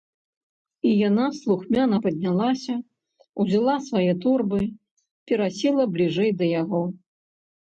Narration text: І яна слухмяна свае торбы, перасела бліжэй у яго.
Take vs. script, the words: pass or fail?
fail